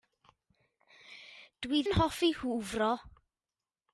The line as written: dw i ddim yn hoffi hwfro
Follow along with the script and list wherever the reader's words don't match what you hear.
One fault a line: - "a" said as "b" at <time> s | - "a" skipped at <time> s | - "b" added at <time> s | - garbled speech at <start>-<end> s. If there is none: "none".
- "ddim" skipped at 1.8 s